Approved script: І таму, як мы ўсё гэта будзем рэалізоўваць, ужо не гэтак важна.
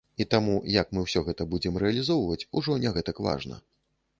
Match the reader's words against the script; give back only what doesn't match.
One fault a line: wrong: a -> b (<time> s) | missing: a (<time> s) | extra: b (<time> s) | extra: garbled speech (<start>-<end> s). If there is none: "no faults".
no faults